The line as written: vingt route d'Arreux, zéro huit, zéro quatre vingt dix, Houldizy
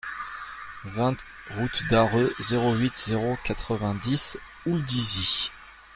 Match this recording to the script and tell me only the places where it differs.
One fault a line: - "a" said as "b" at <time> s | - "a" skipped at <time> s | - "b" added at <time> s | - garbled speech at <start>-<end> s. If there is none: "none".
none